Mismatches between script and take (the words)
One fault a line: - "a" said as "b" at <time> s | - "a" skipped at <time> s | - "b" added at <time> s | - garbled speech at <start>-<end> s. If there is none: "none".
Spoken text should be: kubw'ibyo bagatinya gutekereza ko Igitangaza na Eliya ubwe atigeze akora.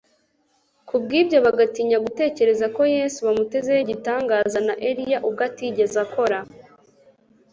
- "Yesu bamutezeho" added at 3.0 s